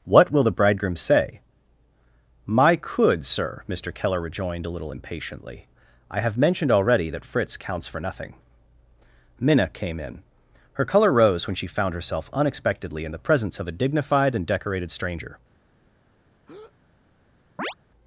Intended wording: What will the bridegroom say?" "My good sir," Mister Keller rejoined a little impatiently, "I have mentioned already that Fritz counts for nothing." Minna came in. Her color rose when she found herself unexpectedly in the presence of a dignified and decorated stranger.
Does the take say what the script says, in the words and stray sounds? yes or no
no